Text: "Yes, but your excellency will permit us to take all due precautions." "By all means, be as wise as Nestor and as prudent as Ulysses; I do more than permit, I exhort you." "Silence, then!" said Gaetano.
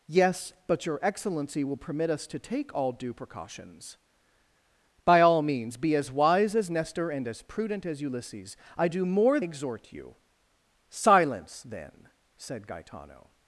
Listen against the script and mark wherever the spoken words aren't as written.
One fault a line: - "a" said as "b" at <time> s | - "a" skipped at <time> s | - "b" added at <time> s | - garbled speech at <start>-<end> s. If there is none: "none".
- "than permit I" skipped at 9.4 s